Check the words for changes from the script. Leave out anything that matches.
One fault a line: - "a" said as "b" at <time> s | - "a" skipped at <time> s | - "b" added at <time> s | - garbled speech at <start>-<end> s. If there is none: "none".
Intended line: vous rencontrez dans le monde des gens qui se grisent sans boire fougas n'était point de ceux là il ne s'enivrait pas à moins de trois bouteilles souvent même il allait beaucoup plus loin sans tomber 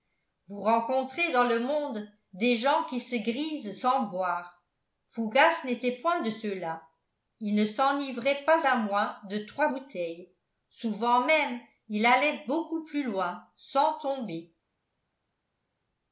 none